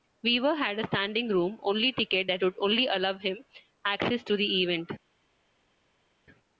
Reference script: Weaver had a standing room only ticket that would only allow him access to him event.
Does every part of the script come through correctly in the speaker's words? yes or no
no